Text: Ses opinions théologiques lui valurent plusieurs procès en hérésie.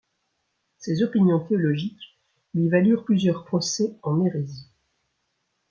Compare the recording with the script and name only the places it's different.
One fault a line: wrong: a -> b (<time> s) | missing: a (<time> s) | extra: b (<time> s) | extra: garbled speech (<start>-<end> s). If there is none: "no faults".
no faults